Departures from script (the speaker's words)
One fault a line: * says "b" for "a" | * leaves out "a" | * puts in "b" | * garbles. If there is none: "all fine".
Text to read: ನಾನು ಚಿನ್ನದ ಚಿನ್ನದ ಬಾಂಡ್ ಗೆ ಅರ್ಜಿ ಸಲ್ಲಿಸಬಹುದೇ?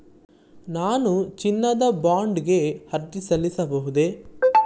* leaves out "ಚಿನ್ನದ"